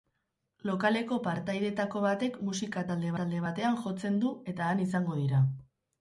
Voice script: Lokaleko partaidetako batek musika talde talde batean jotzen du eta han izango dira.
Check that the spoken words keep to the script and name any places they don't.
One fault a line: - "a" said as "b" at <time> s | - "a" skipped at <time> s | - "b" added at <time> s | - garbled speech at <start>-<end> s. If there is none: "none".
none